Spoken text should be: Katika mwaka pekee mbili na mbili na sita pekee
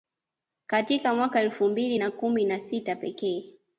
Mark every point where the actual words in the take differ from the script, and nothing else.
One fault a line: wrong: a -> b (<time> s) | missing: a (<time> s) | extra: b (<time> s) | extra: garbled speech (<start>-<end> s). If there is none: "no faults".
wrong: pekee -> elfu (1.4 s)
wrong: mbili -> kumi (2.1 s)